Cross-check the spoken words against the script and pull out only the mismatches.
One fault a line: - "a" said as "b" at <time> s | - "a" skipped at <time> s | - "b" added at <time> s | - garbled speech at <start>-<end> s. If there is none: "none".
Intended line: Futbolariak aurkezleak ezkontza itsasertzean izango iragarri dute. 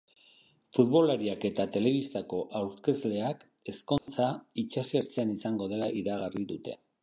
- "eta telebistako" added at 1.5 s
- "dela" added at 5.8 s